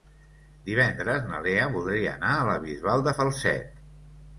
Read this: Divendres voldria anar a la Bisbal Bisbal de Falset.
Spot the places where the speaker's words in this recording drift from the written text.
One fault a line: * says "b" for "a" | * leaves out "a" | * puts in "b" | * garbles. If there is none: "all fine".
* puts in "na Lea"
* leaves out "Bisbal"